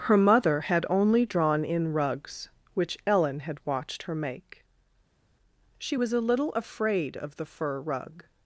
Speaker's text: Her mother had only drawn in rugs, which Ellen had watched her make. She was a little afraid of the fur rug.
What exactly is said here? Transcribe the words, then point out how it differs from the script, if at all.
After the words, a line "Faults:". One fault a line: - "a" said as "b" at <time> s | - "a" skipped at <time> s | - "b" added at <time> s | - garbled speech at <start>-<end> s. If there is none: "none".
Her mother had only drawn in rugs, which Ellen had watched her make. She was a little afraid of the fur rug.
Faults:
none